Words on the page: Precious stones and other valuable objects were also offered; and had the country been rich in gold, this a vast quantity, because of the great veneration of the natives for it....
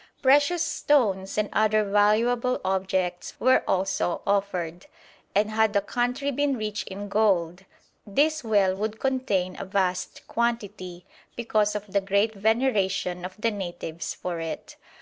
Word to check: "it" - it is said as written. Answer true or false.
true